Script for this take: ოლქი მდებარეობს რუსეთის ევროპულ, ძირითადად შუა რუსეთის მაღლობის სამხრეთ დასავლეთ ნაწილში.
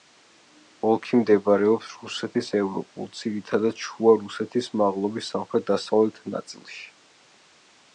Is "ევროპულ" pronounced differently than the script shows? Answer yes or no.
no